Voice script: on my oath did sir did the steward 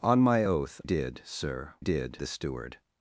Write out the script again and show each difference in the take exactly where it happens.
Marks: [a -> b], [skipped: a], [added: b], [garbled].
on my oath did sir did the steward